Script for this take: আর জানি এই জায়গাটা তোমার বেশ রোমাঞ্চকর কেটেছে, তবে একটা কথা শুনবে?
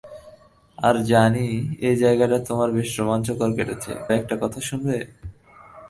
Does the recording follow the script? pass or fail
fail